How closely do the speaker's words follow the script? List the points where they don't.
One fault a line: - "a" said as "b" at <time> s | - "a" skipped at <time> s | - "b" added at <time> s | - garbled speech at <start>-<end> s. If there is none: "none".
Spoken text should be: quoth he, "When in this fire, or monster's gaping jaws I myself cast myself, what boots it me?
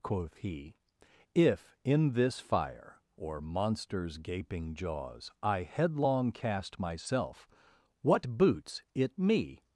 - "When" said as "If" at 1.4 s
- "myself" said as "headlong" at 5.6 s